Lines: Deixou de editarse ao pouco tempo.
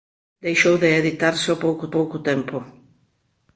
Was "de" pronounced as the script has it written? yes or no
yes